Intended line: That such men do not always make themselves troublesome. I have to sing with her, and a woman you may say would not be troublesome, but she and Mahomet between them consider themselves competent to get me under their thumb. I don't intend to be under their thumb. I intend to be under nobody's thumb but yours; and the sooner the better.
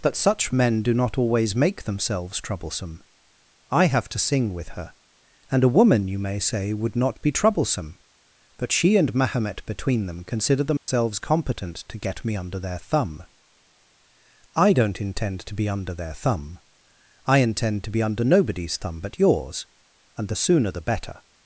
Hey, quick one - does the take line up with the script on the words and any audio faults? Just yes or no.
no